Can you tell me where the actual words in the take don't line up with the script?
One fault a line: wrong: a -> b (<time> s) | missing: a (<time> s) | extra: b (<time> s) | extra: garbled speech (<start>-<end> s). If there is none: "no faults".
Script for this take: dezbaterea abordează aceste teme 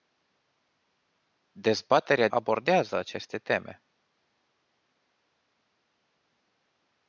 no faults